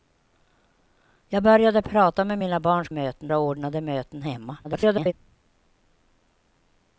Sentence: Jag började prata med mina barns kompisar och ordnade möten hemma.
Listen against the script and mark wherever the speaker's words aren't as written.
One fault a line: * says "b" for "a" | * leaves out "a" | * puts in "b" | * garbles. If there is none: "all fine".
* says "möten" for "kompisar"
* garbles